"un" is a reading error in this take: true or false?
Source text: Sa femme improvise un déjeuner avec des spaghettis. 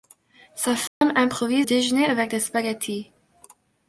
true